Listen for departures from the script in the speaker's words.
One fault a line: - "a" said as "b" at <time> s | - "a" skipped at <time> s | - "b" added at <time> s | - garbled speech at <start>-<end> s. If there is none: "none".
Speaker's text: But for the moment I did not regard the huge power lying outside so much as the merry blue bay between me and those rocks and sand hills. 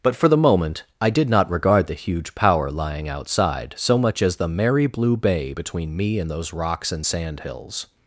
none